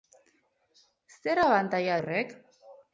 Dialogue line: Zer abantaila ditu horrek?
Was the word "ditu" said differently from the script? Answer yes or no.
yes